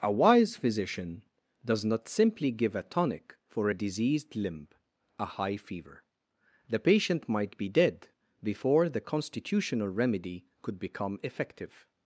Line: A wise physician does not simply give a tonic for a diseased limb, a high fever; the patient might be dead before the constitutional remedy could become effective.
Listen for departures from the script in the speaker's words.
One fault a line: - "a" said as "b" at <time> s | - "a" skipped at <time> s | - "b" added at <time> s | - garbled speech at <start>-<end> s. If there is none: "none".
none